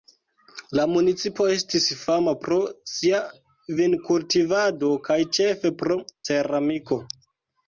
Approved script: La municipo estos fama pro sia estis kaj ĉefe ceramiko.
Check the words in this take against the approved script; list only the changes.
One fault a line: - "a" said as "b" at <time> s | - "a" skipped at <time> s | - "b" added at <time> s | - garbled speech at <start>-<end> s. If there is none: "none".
- "estos" said as "estis" at 1.6 s
- "estis" said as "vinkultivado" at 3.8 s
- "pro" added at 5.8 s